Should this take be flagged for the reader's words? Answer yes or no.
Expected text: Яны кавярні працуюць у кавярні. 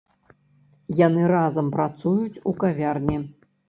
yes